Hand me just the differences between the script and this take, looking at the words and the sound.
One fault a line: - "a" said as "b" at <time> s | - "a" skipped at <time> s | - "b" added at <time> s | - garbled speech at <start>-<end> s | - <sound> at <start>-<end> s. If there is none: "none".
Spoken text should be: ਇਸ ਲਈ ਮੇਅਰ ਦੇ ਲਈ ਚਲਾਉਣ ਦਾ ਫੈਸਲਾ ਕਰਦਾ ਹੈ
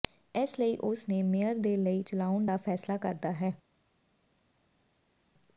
- "ਉਸ ਨੇ" added at 0.8 s